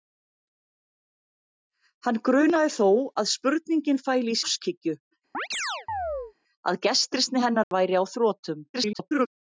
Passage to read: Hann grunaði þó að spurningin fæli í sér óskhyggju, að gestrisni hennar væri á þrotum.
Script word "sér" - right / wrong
wrong